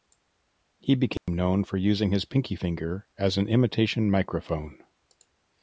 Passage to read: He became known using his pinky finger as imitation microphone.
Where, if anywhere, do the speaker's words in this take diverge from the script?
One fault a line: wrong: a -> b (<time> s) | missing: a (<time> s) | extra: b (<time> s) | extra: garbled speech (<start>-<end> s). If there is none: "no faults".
extra: for (1.6 s)
extra: an (3.4 s)